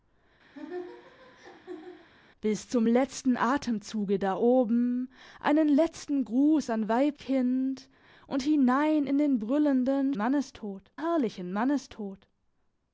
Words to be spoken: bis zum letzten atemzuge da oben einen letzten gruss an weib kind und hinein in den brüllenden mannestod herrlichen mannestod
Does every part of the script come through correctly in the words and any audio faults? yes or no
no